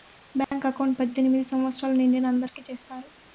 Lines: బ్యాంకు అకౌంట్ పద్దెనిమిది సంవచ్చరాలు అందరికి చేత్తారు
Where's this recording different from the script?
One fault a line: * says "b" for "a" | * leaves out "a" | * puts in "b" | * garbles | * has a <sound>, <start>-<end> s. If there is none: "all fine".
* has a dropout, 0.4-0.5 s
* puts in "నిండిన"